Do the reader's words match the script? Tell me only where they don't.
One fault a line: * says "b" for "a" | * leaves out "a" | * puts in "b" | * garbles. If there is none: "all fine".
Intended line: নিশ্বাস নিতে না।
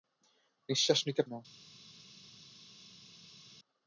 all fine